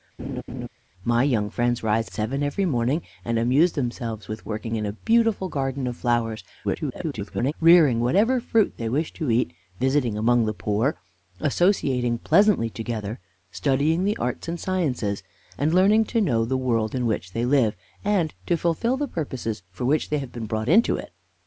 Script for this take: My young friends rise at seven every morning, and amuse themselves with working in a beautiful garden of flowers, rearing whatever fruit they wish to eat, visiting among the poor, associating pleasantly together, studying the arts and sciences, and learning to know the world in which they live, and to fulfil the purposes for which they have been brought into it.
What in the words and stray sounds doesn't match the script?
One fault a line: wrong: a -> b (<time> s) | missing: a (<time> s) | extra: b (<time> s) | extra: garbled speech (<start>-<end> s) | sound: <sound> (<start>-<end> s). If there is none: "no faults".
sound: laugh (0.2-0.7 s)
missing: at (2.1 s)
extra: garbled speech (6.6-7.5 s)